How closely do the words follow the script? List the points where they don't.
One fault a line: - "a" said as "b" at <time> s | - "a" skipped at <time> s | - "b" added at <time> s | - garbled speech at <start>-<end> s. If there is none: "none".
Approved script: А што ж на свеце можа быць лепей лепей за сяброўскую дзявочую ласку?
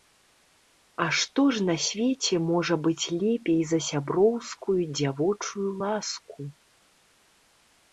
- "лепей" skipped at 3.6 s